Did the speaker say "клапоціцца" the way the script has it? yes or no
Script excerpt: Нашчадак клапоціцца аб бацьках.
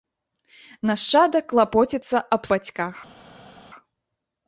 yes